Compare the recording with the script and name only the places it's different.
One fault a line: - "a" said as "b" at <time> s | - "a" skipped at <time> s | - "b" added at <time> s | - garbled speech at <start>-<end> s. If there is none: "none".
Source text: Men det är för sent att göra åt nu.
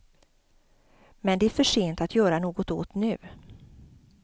- "något" added at 2.4 s